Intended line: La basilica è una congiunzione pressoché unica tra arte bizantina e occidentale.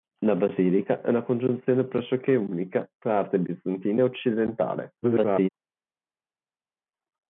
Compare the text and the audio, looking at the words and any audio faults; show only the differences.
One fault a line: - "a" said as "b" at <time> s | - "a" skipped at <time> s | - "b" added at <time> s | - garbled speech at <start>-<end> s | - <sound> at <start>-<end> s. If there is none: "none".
- garbled speech at 5.0-5.5 s